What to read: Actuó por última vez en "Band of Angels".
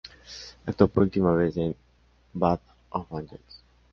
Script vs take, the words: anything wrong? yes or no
no